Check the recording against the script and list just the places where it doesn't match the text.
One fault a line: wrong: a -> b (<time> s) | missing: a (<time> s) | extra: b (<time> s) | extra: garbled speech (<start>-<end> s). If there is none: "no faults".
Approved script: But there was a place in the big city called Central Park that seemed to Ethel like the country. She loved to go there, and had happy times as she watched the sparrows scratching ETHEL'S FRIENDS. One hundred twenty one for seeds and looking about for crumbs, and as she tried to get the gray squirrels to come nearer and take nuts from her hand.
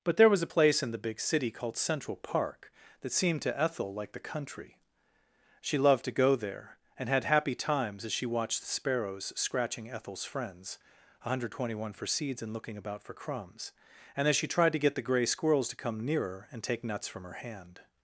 no faults